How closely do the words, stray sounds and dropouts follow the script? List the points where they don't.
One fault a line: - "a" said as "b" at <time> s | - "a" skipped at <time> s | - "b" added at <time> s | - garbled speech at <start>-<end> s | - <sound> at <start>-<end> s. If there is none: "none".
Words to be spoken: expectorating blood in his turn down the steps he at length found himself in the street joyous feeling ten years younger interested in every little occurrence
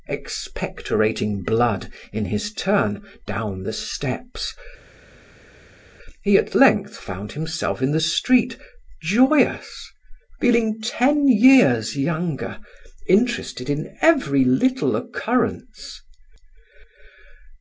none